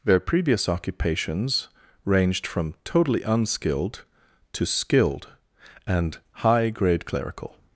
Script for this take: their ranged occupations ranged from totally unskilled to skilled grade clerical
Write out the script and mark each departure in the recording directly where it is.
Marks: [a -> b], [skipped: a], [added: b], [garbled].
their [ranged -> previous] occupations ranged from totally unskilled to skilled [added: and high] grade clerical